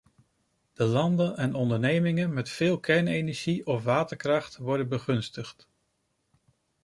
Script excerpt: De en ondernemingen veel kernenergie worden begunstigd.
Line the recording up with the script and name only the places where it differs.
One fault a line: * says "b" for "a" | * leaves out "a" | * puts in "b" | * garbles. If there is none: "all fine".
* puts in "landen"
* puts in "met"
* puts in "of waterkracht"